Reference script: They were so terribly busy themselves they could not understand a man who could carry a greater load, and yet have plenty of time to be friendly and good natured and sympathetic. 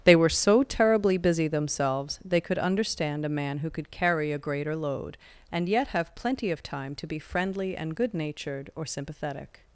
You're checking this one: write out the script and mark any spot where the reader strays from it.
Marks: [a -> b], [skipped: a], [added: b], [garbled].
They were so terribly busy themselves they could [skipped: not] understand a man who could carry a greater load, and yet have plenty of time to be friendly and good natured [and -> or] sympathetic.